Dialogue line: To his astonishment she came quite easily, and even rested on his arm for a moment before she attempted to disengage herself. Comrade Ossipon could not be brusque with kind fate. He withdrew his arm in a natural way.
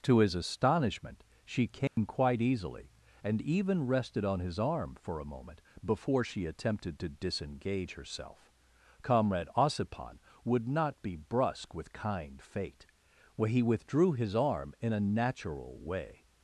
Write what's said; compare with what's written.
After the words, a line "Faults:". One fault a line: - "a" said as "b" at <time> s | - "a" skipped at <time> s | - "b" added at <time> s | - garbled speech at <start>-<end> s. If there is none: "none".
To his astonishment she came quite easily, and even rested on his arm for a moment before she attempted to disengage herself. Comrade Ossipon would not be brusque with kind fate. He withdrew his arm in a natural way.
Faults:
- "could" said as "would" at 10.4 s